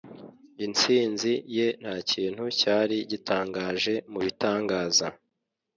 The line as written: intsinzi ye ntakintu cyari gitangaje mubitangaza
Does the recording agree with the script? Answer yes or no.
yes